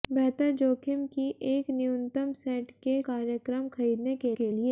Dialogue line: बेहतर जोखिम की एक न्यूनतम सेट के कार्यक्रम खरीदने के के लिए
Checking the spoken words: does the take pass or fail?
pass